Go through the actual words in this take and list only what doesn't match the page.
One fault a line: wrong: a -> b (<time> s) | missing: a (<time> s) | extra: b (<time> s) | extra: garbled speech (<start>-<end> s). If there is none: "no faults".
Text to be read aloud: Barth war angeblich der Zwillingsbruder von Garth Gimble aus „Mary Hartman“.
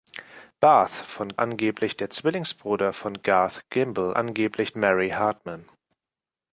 wrong: war -> von (1.1 s)
wrong: aus -> angeblich (4.2 s)